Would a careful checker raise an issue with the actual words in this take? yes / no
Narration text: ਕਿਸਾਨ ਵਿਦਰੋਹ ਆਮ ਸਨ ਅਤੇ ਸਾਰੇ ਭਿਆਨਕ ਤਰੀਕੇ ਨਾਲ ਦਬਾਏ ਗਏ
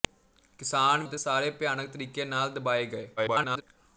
yes